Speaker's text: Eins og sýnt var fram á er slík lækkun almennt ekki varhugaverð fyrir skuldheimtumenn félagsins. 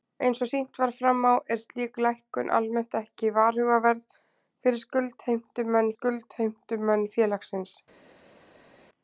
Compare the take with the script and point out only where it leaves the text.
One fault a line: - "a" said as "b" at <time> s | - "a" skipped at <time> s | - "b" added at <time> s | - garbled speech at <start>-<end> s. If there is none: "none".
- "skuldheimtumenn" added at 5.9 s